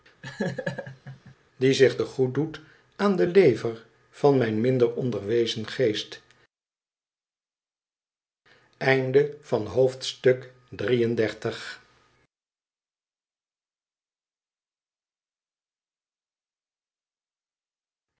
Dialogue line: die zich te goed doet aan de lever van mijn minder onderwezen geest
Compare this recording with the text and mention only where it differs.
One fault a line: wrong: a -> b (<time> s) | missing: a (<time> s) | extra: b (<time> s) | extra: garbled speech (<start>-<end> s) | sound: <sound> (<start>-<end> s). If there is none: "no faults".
sound: laugh (0.2-1.4 s)